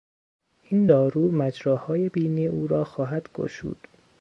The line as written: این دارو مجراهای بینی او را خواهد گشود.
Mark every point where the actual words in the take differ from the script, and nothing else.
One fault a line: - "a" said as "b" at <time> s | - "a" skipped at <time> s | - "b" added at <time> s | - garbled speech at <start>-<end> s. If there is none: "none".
none